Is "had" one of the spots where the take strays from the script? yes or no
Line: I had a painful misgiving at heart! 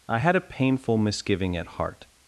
no